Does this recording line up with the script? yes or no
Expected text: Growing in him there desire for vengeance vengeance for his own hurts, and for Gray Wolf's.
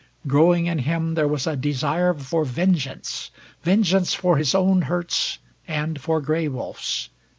no